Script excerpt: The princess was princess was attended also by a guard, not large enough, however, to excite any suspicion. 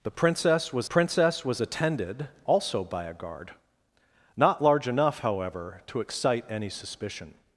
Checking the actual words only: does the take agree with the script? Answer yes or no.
yes